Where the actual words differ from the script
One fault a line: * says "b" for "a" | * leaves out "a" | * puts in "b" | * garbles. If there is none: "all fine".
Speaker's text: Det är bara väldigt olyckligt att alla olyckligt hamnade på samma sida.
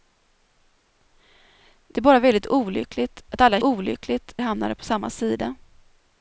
all fine